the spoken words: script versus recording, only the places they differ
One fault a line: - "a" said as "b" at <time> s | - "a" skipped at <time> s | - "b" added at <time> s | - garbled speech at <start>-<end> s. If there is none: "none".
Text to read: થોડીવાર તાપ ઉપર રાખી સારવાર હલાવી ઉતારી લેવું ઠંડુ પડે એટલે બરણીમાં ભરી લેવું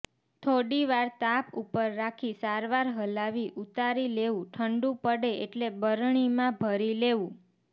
none